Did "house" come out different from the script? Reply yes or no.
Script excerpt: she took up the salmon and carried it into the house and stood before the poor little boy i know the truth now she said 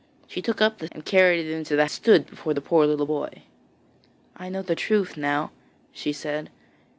yes